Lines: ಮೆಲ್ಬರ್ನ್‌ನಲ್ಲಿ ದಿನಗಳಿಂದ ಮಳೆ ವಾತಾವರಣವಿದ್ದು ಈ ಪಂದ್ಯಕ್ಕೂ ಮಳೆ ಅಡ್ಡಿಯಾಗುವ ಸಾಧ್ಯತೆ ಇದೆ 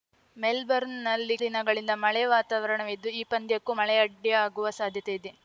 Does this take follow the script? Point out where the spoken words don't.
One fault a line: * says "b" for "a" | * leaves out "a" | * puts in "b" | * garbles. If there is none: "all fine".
all fine